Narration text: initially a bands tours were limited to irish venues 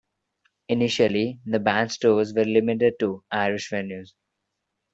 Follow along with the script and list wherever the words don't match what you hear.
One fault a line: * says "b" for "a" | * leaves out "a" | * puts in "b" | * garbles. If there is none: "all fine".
* says "the" for "a"